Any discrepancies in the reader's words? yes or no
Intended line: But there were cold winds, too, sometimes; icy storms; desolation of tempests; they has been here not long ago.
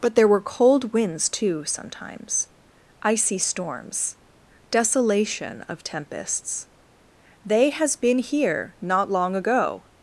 no